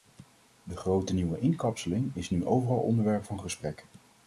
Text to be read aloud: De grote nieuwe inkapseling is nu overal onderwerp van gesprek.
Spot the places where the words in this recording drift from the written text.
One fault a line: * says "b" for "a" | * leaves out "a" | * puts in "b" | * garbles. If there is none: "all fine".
all fine